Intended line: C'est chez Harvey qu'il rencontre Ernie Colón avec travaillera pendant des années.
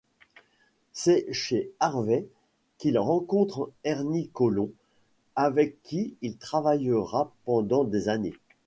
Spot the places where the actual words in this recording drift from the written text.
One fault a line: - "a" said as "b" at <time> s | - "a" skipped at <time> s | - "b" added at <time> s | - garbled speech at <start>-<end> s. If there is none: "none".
- "qui il" added at 5.8 s